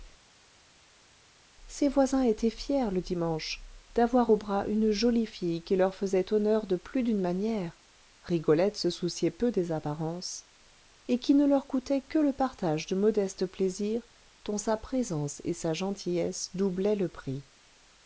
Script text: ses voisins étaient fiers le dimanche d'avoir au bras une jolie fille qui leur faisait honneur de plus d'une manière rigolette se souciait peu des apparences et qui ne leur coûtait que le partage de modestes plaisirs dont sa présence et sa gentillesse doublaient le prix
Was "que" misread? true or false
false